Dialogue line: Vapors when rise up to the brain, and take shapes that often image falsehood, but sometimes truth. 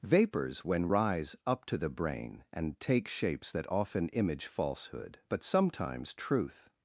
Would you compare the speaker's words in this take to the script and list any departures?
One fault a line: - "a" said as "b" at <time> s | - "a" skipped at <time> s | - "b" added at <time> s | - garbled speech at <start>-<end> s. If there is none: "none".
none